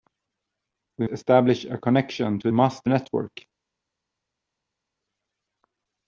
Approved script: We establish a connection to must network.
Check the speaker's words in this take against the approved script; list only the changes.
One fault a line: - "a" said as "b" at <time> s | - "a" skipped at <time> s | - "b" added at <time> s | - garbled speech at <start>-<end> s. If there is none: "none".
none